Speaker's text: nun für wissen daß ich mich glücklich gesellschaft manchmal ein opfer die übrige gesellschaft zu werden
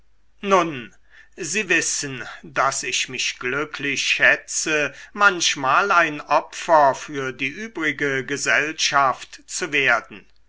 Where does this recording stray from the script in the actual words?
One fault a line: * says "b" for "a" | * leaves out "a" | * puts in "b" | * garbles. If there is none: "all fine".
* says "sie" for "für"
* says "schätze" for "gesellschaft"
* puts in "für"